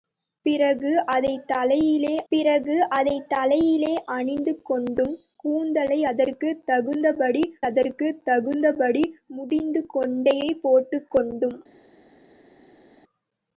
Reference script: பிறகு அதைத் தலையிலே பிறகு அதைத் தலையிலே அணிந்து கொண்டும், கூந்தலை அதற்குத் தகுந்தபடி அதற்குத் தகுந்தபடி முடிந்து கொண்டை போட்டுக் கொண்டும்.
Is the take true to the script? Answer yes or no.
yes